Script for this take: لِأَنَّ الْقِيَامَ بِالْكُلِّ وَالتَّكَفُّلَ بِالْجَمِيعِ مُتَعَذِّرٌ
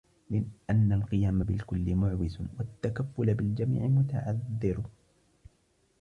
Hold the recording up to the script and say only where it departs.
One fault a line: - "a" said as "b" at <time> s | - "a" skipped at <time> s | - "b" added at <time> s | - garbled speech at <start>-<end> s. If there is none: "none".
- "مُعْوِزٌ" added at 2.0 s